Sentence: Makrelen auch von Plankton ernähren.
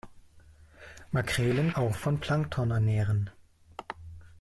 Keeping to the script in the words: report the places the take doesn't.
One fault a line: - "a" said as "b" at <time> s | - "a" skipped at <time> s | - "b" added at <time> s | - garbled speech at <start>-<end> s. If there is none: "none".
none